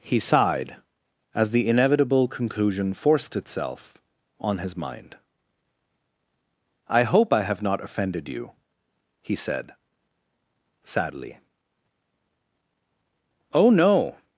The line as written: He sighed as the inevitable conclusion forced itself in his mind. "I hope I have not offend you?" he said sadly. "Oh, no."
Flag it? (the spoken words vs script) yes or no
yes